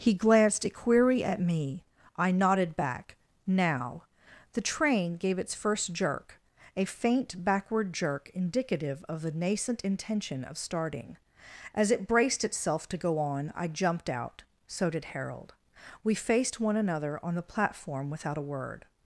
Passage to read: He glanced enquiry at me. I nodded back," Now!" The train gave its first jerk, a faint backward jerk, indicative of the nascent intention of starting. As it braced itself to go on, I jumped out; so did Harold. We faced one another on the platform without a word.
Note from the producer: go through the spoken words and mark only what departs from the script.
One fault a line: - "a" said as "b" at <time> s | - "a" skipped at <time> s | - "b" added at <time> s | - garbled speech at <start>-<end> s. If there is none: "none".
- "enquiry" said as "a query" at 0.7 s